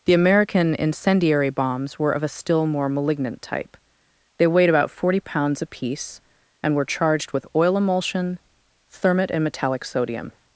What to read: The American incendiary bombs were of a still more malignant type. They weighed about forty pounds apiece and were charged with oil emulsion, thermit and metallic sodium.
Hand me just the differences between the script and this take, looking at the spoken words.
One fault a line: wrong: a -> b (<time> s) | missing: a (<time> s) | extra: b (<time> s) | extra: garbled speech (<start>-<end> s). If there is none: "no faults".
no faults